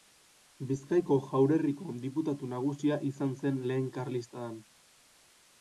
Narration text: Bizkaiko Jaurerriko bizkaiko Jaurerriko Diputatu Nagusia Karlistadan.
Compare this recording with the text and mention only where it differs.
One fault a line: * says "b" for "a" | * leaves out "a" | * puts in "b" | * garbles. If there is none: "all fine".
* says "Diputatu Nagusia izan zen Lehen" for "bizkaiko Jaurerriko Diputatu Nagusia"